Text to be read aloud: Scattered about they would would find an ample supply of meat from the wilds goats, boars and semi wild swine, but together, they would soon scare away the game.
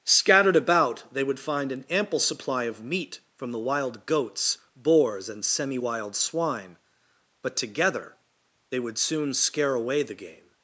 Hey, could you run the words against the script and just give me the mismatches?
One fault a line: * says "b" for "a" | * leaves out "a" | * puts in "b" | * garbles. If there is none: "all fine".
* leaves out "would"
* says "wild" for "wilds"